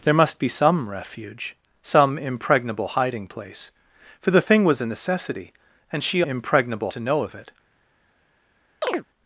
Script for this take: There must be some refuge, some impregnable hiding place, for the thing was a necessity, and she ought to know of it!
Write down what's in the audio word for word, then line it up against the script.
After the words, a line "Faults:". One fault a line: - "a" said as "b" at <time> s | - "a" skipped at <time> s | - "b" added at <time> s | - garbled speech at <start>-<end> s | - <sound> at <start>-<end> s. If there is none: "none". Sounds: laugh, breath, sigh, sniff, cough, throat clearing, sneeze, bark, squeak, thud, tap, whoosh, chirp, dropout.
There must be some refuge, some impregnable hiding place, for the thing was a necessity, and she impregnable to know of it!
Faults:
- "ought" said as "impregnable" at 6.2 s
- chirp at 8.8-9.1 s